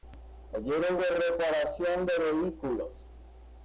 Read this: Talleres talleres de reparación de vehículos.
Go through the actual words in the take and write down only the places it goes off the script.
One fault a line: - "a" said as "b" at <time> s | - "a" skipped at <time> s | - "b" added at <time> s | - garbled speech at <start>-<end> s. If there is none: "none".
- "talleres" skipped at 1.0 s